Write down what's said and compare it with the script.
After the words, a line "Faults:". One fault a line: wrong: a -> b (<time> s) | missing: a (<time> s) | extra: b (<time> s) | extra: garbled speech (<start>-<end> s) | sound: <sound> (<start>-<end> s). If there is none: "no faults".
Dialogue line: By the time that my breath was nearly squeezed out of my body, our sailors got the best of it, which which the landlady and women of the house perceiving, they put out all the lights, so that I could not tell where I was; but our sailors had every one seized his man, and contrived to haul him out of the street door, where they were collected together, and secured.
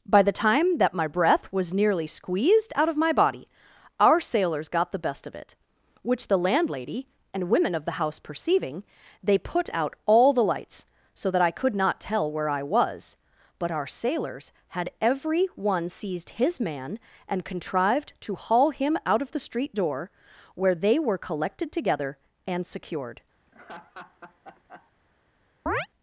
By the time that my breath was nearly squeezed out of my body, our sailors got the best of it, which the landlady and women of the house perceiving, they put out all the lights, so that I could not tell where I was; but our sailors had every one seized his man, and contrived to haul him out of the street door, where they were collected together, and secured.
Faults:
missing: which (6.3 s)
sound: laugh (23.4-24.9 s)
sound: chirp (25.7-25.9 s)